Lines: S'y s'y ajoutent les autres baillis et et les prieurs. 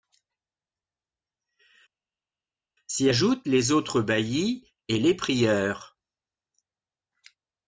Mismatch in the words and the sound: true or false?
true